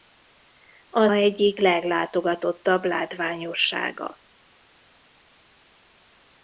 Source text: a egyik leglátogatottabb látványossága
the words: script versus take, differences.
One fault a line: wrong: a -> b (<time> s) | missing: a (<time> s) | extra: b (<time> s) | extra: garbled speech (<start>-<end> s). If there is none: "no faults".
no faults